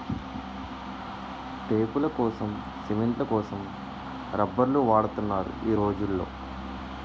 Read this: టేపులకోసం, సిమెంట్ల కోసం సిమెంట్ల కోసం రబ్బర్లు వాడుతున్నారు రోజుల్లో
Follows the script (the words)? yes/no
no